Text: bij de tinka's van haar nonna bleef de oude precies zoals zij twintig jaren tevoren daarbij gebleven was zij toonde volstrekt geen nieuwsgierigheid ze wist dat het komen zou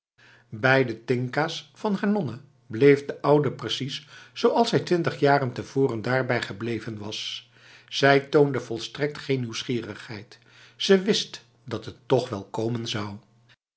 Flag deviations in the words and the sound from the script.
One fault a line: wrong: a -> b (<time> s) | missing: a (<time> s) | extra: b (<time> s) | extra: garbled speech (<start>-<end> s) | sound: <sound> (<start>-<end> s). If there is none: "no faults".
extra: toch wel (12.0 s)